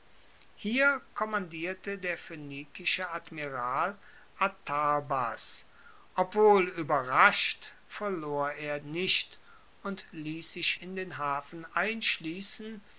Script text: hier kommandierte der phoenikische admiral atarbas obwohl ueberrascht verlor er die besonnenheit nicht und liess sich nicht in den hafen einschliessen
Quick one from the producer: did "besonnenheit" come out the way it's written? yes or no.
no